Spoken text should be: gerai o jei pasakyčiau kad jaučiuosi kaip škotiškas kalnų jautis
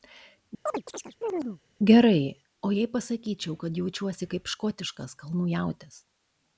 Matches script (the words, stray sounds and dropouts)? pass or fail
fail